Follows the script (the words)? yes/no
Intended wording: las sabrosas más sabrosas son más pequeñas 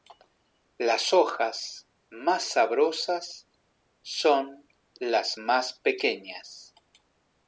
no